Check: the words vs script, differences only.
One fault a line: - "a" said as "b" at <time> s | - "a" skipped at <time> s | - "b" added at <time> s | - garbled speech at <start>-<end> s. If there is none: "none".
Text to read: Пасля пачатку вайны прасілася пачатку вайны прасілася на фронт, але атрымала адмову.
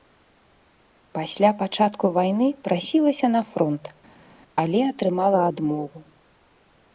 - "пачатку вайны прасілася" skipped at 3.3 s